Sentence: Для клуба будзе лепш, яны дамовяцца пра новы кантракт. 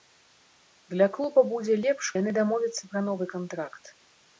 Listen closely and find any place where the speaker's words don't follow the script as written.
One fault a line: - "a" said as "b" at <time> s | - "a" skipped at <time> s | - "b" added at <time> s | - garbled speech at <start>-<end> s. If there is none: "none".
none